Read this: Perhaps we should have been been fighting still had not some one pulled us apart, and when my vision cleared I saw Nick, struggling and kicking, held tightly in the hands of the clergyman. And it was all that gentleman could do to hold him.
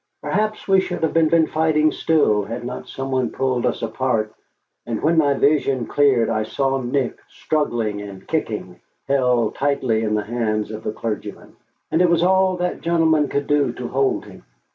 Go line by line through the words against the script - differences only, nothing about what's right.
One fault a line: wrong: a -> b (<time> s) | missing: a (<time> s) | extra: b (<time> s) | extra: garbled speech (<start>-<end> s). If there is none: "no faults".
no faults